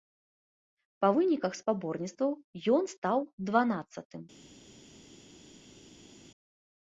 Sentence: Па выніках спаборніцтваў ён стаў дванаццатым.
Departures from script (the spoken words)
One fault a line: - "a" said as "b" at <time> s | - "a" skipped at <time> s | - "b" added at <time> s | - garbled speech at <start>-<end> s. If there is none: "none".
none